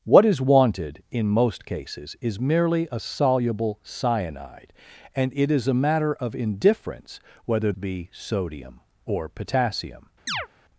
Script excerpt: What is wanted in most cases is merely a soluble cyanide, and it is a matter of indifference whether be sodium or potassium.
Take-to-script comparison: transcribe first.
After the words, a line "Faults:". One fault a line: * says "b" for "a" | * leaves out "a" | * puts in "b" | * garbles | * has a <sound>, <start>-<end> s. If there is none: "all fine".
What is wanted in most cases is merely a soluble cyanide, and it is a matter of indifference whether be sodium or potassium.
Faults:
* has a chirp, 10.3-10.5 s